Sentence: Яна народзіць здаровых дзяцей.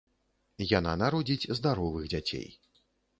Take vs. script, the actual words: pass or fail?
pass